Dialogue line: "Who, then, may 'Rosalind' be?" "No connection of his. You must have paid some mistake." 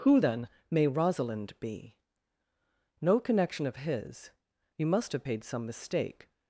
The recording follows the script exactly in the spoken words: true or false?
true